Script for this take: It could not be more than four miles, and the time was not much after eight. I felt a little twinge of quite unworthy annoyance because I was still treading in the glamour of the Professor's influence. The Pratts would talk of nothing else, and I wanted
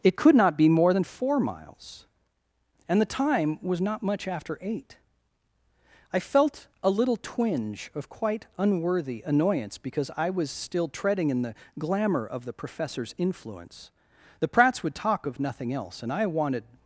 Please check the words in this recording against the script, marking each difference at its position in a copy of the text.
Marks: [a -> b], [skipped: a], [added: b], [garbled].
It could not be more than four miles, and the time was not much after eight. I felt a little twinge of quite unworthy annoyance because I was still treading in the glamour of the Professor's influence. The Pratts would talk of nothing else, and I wanted